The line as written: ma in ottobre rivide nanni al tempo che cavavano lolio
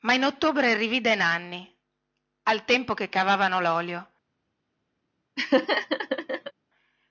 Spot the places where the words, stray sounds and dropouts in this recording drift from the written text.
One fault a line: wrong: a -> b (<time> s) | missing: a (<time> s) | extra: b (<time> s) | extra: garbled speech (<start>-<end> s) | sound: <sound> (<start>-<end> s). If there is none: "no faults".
sound: laugh (5.4-6.5 s)